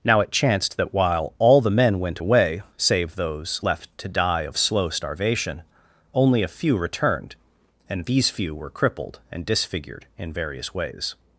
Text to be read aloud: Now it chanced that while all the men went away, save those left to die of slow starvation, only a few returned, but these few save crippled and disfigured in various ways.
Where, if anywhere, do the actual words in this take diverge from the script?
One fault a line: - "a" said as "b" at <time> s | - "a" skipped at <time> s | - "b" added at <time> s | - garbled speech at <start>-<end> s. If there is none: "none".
- "but" said as "and" at 7.9 s
- "save" said as "were" at 8.5 s